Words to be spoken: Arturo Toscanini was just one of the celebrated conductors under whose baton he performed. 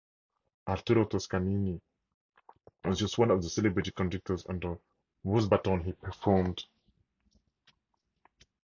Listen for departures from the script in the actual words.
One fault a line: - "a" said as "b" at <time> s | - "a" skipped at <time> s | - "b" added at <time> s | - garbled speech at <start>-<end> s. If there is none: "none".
none